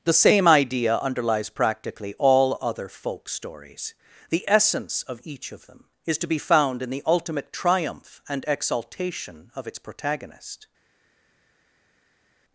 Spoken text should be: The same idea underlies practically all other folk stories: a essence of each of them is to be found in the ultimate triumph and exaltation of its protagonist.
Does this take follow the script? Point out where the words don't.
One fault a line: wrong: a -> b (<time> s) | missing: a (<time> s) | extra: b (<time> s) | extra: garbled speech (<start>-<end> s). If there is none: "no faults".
wrong: a -> the (4.3 s)